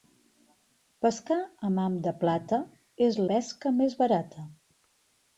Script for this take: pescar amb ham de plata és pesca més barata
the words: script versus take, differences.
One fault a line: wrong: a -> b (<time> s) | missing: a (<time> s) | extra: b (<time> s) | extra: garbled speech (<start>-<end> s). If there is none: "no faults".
no faults